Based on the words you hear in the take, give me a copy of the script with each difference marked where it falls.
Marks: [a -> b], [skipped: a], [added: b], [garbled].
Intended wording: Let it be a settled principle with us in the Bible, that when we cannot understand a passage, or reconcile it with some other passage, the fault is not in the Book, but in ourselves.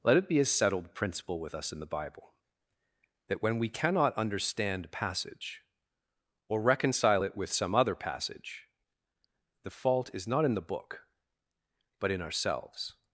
Let it be a settled principle with us in the Bible, that when we cannot understand a passage, or reconcile it with some other passage, the fault is not in the Book, but in ourselves.